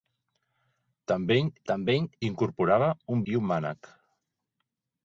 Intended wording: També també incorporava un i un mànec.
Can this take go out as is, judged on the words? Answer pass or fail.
pass